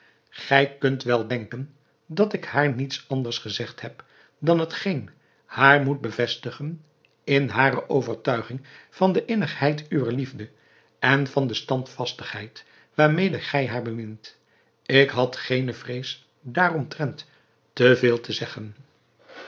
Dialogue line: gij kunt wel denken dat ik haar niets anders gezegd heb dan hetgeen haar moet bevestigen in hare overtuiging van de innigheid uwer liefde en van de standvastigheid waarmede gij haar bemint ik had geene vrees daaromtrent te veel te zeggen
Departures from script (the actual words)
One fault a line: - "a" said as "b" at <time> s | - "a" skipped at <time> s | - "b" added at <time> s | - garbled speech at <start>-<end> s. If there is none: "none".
none